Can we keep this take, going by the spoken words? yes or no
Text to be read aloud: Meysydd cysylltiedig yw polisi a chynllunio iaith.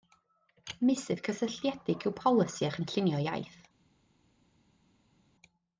yes